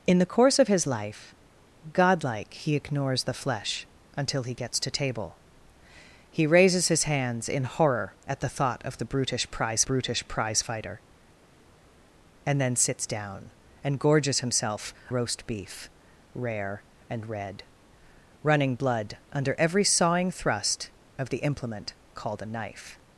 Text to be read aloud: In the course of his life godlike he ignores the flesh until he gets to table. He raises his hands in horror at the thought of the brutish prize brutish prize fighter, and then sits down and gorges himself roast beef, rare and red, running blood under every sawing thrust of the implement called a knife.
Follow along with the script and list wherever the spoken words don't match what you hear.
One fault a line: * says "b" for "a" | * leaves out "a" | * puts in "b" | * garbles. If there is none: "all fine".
all fine